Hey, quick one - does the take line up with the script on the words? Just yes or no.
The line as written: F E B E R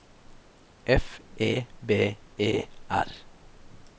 yes